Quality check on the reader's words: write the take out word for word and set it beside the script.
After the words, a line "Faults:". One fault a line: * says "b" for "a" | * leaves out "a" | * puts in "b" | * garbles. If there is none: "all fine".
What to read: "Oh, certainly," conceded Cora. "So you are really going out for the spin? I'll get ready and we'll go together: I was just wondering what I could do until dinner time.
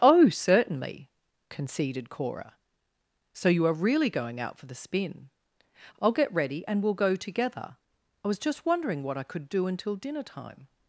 "Oh, certainly," conceded Cora. "So you are really going out for the spin? I'll get ready and we'll go together: I was just wondering what I could do until dinner time.
Faults:
all fine